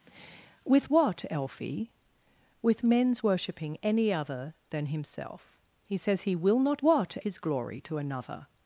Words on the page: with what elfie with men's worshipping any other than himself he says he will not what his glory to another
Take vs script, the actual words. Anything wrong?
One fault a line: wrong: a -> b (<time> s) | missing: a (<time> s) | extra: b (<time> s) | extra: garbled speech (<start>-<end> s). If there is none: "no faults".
no faults